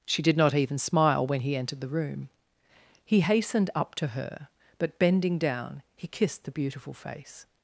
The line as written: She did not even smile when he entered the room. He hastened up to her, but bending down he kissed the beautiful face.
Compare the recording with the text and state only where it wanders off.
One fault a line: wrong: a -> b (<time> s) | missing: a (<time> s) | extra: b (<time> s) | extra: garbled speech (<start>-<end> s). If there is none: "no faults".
no faults